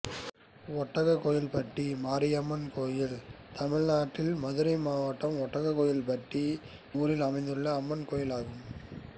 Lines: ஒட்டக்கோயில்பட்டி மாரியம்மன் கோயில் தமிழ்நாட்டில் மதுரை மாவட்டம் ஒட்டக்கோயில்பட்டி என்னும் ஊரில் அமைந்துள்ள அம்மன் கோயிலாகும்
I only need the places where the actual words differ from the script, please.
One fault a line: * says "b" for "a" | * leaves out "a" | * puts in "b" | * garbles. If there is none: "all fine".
* leaves out "என்னும்"